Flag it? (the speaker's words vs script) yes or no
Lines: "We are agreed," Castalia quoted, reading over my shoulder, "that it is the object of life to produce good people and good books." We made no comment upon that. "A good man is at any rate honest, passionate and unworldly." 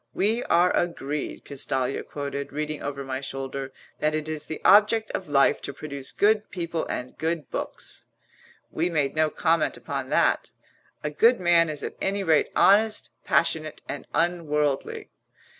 no